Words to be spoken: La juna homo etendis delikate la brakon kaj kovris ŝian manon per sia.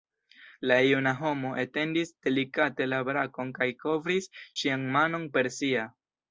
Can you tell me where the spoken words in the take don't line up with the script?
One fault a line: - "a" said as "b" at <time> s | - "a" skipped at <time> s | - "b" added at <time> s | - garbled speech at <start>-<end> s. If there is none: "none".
none